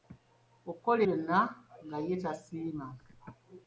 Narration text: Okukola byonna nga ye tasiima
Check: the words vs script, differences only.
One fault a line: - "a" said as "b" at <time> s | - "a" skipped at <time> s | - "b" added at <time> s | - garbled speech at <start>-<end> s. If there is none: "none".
none